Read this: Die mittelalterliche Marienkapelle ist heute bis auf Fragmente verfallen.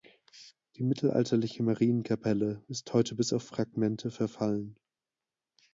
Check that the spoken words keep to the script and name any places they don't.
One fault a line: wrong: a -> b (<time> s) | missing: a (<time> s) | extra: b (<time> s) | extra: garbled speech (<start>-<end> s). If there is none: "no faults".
no faults